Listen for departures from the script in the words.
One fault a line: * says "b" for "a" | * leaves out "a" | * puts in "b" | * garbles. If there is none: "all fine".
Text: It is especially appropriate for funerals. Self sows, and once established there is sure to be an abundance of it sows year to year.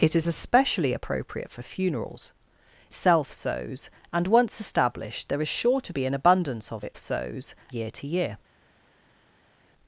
all fine